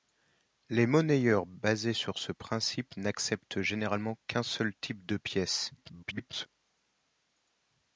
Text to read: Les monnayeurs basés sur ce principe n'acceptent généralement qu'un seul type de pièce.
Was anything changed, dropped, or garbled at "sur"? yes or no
no